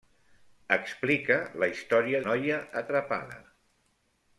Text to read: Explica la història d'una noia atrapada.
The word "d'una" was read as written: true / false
false